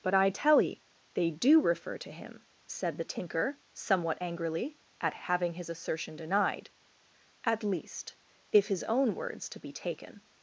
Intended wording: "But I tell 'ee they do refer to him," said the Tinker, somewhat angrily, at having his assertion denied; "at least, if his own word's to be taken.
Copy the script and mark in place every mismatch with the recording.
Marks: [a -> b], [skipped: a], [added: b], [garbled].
"But I tell 'ee they do refer to him," said the Tinker, somewhat angrily, at having his assertion denied; "at least, if his own word's to be taken.